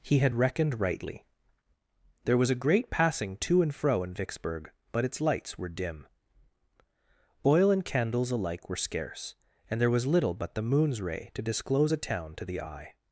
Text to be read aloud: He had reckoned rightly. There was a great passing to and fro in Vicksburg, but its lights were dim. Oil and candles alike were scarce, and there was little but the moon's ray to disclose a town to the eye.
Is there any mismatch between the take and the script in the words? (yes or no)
no